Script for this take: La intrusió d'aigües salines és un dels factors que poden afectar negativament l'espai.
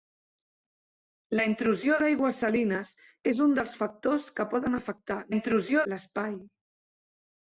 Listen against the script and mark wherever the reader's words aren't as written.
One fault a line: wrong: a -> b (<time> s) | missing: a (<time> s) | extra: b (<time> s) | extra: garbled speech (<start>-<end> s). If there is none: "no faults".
wrong: negativament -> intrusió (5.3 s)